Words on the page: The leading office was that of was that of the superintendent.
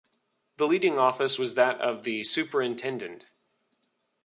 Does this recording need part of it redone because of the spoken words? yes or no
yes